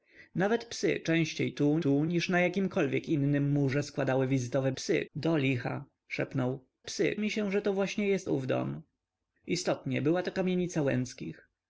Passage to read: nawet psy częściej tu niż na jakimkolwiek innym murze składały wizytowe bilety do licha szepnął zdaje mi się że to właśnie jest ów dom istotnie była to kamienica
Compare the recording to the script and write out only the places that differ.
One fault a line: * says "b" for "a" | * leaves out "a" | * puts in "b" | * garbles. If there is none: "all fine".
* puts in "tu"
* says "psy" for "bilety"
* says "psy" for "zdaje"